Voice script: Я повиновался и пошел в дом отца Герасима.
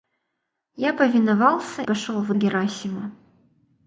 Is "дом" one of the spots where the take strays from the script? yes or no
yes